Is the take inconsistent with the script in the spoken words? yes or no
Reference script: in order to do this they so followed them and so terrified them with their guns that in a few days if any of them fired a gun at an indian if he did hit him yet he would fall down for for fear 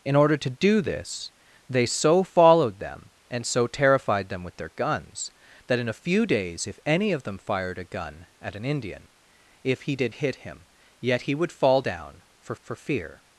no